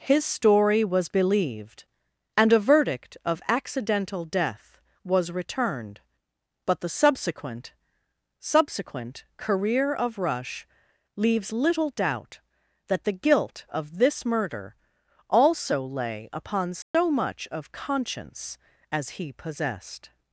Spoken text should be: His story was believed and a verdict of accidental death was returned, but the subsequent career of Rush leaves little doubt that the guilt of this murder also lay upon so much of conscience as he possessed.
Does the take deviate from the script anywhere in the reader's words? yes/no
yes